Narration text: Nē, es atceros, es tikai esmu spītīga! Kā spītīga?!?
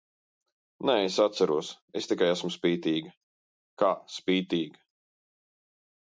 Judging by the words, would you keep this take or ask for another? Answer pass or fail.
pass